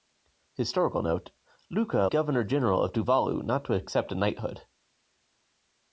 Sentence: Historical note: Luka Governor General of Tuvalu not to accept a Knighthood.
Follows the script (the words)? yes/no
yes